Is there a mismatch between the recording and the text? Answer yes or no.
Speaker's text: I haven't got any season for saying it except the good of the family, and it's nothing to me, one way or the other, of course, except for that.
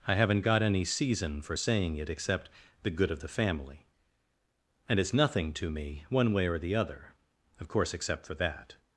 no